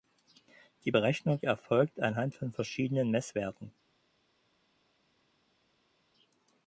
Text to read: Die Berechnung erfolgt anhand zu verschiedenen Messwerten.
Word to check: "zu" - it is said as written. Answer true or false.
false